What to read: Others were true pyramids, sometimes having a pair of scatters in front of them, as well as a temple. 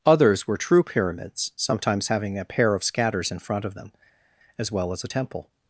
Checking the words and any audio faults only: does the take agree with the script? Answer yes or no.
yes